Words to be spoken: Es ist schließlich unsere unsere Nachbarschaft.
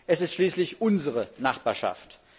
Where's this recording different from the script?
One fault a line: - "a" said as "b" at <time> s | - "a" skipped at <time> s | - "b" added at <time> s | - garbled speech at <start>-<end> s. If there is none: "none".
- "unsere" skipped at 1.3 s